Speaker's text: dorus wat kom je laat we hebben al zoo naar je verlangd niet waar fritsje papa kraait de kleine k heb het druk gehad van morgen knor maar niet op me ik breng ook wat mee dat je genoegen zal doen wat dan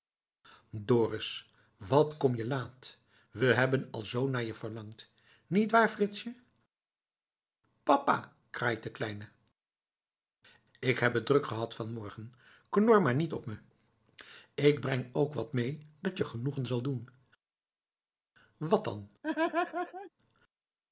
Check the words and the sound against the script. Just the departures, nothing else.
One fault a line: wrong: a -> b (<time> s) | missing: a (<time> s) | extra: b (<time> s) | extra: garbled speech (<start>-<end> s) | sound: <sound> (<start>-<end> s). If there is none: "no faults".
sound: laugh (19.2-20.1 s)